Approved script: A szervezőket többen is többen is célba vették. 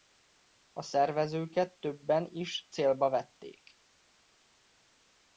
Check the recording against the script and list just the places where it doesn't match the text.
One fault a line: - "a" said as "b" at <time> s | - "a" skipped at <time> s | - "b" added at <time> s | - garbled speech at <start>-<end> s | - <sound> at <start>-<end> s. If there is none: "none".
- "többen is" skipped at 2.7 s